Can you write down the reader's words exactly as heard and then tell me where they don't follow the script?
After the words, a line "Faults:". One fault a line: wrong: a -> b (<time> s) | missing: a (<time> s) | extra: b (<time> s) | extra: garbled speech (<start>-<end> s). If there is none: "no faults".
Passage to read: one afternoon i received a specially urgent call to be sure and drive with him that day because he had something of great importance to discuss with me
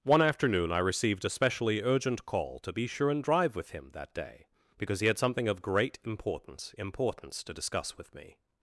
one afternoon i received a specially urgent call to be sure and drive with him that day because he had something of great importance importance to discuss with me
Faults:
extra: importance (6.8 s)